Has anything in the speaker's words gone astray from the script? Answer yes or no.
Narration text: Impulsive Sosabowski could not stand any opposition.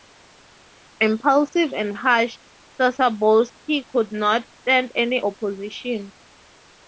yes